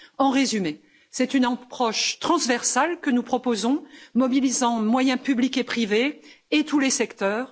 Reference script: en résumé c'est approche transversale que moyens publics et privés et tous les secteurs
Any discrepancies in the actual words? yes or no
yes